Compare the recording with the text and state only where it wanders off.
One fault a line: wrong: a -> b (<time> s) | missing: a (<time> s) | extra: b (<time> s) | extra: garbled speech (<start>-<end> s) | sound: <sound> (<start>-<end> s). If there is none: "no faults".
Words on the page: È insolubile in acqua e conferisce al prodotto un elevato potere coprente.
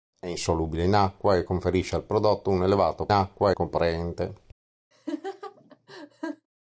wrong: potere -> acqua (3.1 s)
sound: laugh (4.9-6.5 s)